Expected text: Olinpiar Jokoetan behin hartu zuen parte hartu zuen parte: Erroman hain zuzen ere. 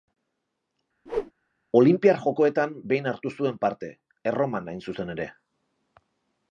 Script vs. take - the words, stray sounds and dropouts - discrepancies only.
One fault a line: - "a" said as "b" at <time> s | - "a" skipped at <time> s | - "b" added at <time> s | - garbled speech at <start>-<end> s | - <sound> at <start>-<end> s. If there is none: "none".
- whoosh at 1.1-1.3 s
- "hartu zuen parte" skipped at 3.9 s